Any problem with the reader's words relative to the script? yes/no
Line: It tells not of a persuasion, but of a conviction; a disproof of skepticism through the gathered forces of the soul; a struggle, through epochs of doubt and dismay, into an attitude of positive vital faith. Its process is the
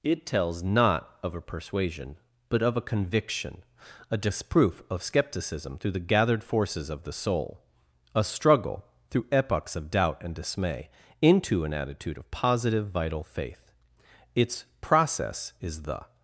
no